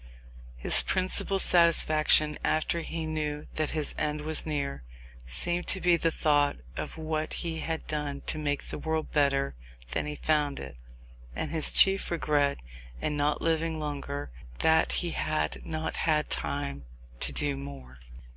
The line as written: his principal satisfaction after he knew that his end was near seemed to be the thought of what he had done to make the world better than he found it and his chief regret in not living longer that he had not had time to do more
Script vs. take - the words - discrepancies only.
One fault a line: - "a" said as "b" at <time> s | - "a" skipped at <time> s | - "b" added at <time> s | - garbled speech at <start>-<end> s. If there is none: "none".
none